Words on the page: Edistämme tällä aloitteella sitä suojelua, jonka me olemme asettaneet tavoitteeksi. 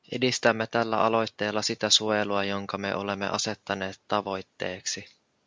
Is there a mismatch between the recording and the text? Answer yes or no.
no